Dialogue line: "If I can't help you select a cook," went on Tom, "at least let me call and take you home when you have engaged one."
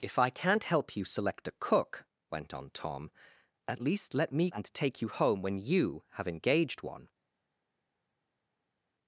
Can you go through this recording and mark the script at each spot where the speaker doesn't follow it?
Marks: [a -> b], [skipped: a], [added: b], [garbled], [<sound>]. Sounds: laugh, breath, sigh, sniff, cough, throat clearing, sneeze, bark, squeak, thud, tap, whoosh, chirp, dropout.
"If I can't help you select a cook," went on Tom, "at least let me [skipped: call] and take you home when you have engaged one."